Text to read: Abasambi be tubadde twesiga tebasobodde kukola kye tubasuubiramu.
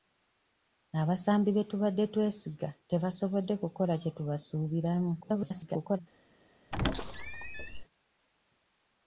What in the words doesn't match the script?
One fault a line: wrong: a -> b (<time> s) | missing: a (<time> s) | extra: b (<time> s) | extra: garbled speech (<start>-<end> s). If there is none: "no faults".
extra: garbled speech (5.2-6.0 s)